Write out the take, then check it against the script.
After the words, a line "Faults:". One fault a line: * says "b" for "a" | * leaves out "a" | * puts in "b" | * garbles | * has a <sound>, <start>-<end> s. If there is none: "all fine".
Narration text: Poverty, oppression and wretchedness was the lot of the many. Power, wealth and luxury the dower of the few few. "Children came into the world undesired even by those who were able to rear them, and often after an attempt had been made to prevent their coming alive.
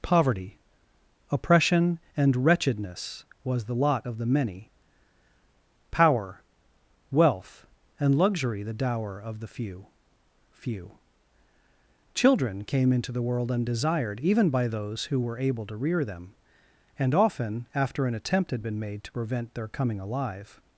Poverty, oppression and wretchedness was the lot of the many. Power, wealth and luxury the dower of the few few. "Children came into the world undesired even by those who were able to rear them, and often after an attempt had been made to prevent their coming alive.
Faults:
all fine